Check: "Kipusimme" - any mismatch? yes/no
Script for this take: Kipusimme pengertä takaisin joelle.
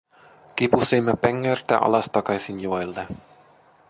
no